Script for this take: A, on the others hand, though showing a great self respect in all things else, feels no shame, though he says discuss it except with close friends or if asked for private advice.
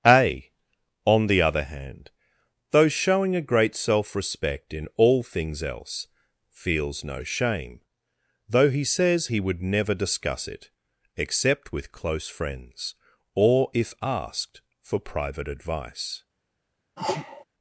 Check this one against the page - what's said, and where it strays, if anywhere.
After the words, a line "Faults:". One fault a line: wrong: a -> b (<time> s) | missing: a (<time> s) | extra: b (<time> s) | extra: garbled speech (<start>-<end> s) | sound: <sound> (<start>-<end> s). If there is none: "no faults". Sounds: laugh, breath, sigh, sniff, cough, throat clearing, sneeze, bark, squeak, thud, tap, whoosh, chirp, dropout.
A, on the other hand, though showing a great self respect in all things else, feels no shame, though he says he would never discuss it except with close friends or if asked for private advice.
Faults:
wrong: others -> other (1.4 s)
extra: he would never (9.3 s)
sound: sneeze (17.0-17.4 s)